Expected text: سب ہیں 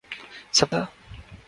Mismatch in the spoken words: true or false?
false